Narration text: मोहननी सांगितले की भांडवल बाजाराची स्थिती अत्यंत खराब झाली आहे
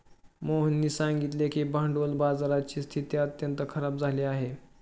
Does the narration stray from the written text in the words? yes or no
no